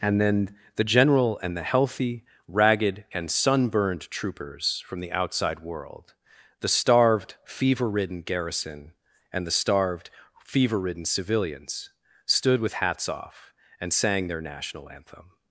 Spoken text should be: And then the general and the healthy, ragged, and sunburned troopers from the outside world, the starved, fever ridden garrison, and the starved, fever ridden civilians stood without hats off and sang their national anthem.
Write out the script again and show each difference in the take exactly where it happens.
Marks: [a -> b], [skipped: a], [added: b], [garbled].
And then the general and the healthy, ragged, and sunburned troopers from the outside world, the starved, fever ridden garrison, and the starved, fever ridden civilians stood [without -> with] hats off and sang their national anthem.